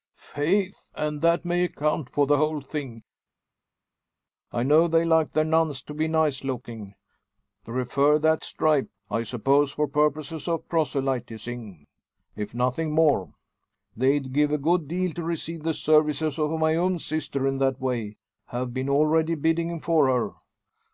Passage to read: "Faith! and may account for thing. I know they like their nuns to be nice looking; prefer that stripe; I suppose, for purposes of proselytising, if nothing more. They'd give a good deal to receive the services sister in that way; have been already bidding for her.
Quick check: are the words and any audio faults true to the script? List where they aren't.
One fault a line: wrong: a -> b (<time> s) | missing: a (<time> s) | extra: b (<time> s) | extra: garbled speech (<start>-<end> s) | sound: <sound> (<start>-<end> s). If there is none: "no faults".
extra: that (1.2 s)
extra: the whole (2.2 s)
extra: of my own (16.4 s)